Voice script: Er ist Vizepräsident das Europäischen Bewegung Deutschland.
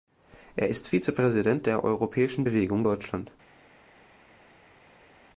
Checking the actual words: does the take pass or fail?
fail